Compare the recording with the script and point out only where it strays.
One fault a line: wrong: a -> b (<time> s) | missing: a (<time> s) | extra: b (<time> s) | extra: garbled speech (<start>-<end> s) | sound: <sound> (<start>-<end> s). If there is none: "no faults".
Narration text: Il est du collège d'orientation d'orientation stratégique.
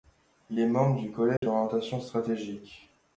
extra: membre (0.7 s)
sound: dropout (1.4-1.4 s)
missing: d'orientation (2.0 s)